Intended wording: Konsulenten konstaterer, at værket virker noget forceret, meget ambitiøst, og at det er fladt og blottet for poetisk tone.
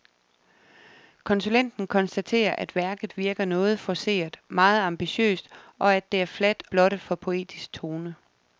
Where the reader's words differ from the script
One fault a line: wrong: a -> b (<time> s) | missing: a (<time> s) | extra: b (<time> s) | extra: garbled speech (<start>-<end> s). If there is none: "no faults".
missing: og (6.6 s)